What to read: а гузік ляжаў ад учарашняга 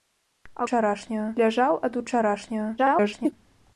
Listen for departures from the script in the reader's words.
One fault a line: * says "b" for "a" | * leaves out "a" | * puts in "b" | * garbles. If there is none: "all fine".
* says "учарашняга" for "гузік"
* garbles